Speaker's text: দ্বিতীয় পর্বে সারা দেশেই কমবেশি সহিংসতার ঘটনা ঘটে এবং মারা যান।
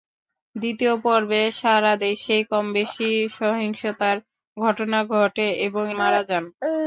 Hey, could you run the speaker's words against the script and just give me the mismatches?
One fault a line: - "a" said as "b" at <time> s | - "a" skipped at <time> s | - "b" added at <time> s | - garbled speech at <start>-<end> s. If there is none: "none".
none